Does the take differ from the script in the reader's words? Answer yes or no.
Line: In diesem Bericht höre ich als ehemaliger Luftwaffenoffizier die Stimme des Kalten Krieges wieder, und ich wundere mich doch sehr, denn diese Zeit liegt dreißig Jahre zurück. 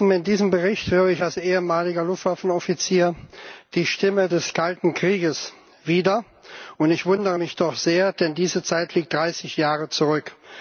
no